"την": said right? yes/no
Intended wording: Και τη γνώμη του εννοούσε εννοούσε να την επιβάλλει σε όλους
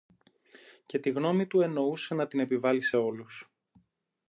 yes